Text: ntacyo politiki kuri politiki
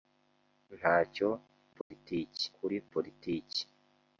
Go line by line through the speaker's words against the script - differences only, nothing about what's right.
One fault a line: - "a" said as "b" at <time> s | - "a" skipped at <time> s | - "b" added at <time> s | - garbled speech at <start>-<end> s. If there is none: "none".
none